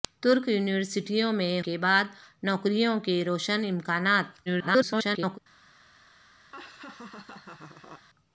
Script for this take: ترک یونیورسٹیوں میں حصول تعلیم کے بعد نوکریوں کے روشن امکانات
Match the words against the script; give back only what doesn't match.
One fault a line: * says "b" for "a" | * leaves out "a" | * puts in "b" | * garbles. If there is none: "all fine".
* leaves out "حصول تعلیم"
* garbles